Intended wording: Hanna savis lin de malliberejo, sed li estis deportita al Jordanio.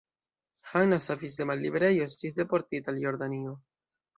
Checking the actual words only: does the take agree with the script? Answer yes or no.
no